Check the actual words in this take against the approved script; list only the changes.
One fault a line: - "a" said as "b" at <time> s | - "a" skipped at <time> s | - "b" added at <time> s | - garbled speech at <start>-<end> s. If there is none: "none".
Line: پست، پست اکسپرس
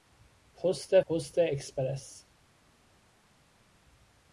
none